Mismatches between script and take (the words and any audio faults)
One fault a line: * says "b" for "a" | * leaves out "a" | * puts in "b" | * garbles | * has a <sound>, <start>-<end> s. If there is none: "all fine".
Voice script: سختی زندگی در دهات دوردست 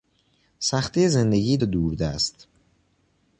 * leaves out "در دهات"